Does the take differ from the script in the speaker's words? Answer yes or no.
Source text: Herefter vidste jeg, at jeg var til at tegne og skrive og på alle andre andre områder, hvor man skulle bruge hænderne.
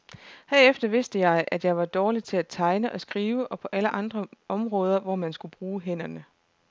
yes